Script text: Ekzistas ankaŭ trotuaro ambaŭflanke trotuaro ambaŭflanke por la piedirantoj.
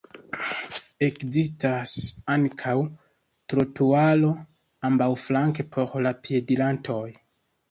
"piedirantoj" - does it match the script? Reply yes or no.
yes